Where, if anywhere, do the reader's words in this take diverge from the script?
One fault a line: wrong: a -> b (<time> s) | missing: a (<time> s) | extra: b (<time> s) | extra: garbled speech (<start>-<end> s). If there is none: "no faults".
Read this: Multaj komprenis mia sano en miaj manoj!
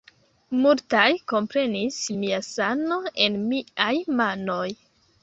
no faults